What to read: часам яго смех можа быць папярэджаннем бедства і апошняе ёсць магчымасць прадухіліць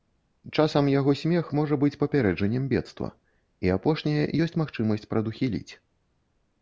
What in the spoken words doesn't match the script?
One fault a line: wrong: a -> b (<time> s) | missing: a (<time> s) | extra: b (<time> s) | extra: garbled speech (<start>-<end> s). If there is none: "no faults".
no faults